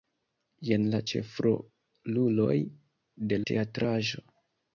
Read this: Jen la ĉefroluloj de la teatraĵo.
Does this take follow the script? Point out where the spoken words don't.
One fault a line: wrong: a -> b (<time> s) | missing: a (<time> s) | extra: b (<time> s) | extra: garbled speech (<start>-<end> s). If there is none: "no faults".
missing: la (3.4 s)